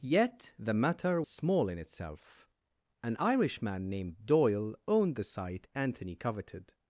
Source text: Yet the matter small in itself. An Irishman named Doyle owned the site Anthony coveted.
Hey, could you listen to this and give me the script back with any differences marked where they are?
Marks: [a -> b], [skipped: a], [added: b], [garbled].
Yet the matter small in itself. An Irishman named Doyle owned the site Anthony coveted.